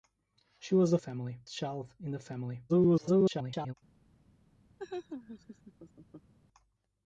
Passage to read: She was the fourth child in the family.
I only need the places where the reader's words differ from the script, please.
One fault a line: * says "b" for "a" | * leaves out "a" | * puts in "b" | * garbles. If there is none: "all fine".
* says "family" for "fourth"
* garbles